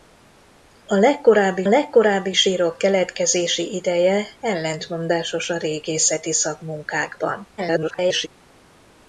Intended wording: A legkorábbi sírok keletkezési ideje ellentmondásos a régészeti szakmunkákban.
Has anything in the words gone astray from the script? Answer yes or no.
yes